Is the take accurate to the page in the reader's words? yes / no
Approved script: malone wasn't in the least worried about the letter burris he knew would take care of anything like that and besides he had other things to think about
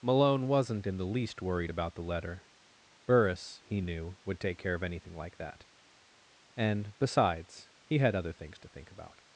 yes